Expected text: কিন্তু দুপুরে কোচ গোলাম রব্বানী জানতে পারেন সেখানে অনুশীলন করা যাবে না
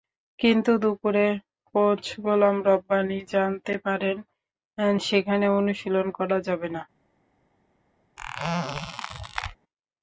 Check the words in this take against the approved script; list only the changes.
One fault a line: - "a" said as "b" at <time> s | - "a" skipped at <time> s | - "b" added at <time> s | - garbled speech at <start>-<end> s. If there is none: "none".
none